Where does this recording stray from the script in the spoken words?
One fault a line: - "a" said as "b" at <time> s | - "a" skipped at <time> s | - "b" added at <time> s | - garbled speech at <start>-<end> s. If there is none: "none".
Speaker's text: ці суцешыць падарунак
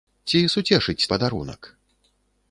none